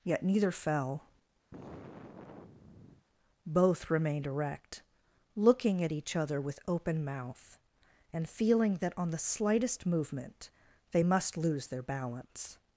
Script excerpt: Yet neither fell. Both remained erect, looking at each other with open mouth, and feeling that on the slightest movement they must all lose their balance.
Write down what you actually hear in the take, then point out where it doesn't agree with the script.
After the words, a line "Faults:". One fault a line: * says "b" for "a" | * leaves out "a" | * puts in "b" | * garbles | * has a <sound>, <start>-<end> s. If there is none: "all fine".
Yet neither fell. Both remained erect, looking at each other with open mouth, and feeling that on the slightest movement they must lose their balance.
Faults:
* has a sigh, 1.5-3.1 s
* leaves out "all"